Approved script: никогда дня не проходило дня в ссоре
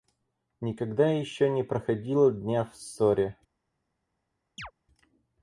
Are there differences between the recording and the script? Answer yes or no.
yes